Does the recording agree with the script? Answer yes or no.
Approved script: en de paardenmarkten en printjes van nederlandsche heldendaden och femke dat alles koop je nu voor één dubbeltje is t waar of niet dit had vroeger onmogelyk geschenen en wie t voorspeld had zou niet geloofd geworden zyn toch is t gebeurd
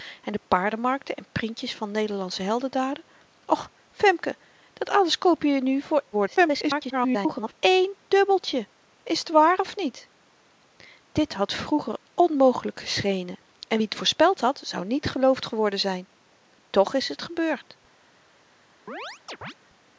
no